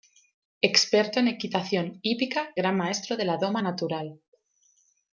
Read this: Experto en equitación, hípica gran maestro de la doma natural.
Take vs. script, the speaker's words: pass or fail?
pass